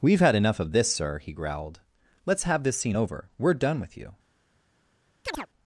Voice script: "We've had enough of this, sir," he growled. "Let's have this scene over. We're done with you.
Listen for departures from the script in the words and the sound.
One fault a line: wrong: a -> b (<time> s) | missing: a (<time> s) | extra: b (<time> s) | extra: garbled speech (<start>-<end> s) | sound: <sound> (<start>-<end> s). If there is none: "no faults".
sound: chirp (5.3-5.5 s)